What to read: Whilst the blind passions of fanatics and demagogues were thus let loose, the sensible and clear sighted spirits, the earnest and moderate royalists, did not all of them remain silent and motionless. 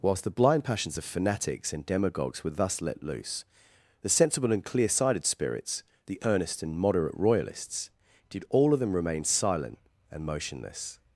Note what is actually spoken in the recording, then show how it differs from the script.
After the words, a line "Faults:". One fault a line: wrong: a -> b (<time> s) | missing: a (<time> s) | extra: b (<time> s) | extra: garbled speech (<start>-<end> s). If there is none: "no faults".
Whilst the blind passions of fanatics and demagogues were thus let loose, the sensible and clear sighted spirits, the earnest and moderate royalists, did all of them remain silent and motionless.
Faults:
missing: not (8.4 s)